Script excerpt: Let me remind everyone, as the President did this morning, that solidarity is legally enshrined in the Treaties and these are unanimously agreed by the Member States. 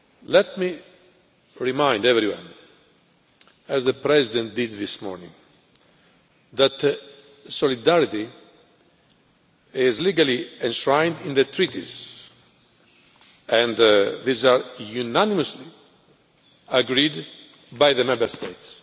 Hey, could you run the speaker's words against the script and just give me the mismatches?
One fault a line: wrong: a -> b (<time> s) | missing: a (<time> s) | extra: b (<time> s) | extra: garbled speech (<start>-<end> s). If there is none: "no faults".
no faults